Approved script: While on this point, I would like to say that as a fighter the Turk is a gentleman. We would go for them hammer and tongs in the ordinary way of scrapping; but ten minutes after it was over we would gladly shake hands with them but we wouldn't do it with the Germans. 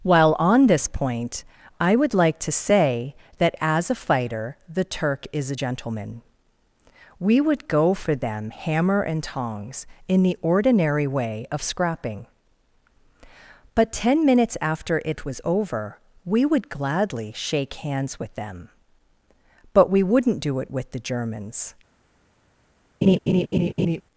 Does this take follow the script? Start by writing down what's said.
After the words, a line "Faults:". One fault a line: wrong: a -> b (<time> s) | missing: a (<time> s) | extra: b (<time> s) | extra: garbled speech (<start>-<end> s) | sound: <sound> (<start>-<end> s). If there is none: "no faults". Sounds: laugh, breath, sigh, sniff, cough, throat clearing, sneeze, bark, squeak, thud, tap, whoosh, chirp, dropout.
While on this point, I would like to say that as a fighter the Turk is a gentleman. We would go for them hammer and tongs in the ordinary way of scrapping; but ten minutes after it was over we would gladly shake hands with them but we wouldn't do it with the Germans.
Faults:
sound: laugh (23.0-24.0 s)